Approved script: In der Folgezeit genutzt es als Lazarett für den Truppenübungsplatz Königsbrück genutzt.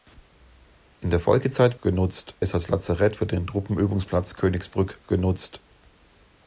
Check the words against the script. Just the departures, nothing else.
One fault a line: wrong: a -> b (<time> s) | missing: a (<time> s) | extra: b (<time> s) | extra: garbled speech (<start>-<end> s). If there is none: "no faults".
no faults